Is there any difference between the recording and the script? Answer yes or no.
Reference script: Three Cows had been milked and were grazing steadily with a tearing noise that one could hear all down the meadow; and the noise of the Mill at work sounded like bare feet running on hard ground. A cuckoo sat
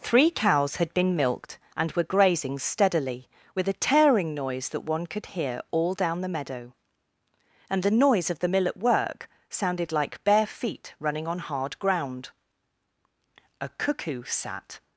no